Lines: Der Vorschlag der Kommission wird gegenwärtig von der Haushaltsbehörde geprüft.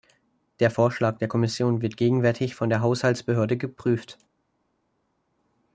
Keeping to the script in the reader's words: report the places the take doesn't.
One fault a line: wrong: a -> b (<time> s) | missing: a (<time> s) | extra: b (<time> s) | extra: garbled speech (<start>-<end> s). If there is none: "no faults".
no faults